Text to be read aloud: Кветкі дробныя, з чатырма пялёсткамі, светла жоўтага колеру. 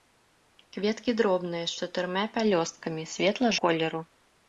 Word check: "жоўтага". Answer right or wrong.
wrong